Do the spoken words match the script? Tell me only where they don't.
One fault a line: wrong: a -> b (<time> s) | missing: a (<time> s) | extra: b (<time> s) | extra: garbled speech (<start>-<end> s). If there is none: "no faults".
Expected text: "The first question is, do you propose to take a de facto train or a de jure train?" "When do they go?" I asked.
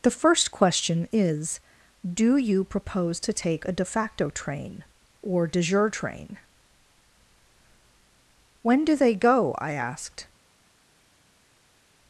missing: a (5.5 s)